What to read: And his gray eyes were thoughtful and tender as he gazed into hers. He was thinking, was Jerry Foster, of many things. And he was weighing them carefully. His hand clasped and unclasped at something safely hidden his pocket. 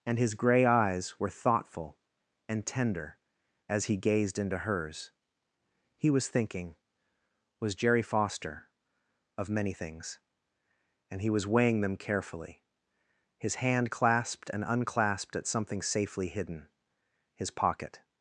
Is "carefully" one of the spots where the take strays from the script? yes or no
no